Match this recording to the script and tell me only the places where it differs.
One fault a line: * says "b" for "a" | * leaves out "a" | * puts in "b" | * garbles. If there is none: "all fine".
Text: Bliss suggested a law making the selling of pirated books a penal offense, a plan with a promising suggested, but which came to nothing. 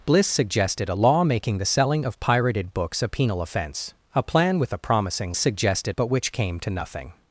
all fine